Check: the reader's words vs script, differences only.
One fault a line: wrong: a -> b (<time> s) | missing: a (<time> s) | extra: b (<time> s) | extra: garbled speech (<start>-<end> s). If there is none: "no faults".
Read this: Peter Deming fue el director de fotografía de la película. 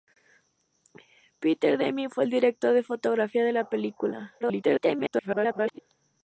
extra: garbled speech (4.4-5.8 s)